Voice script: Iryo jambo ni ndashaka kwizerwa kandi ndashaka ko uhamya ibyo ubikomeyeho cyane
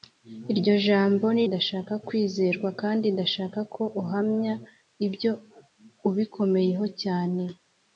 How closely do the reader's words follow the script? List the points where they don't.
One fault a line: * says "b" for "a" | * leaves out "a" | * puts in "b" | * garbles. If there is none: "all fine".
all fine